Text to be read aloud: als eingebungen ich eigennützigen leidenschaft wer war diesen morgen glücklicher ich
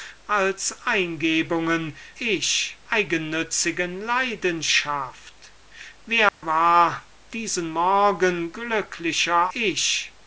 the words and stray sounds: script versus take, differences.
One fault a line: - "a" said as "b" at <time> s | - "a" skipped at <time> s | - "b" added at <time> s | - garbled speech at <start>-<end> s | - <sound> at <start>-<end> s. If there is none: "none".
- dropout at 6.3-6.4 s